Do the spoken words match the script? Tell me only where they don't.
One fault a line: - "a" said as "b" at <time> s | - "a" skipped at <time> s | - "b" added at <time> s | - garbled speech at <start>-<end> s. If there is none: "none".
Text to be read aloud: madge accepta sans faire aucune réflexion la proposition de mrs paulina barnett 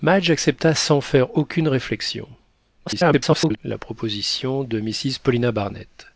- garbled speech at 2.9-3.6 s